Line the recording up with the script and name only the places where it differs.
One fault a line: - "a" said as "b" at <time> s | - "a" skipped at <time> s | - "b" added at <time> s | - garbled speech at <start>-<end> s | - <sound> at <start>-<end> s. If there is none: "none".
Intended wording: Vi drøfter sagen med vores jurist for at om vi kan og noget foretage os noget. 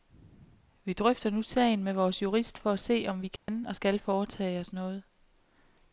- "nu" added at 1.3 s
- "se" added at 2.8 s
- dropout at 3.4-3.5 s
- "noget" said as "skal" at 3.7 s